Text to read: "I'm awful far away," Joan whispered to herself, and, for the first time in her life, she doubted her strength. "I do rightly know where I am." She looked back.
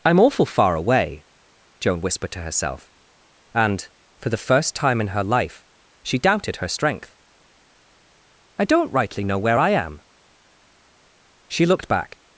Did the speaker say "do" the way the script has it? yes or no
no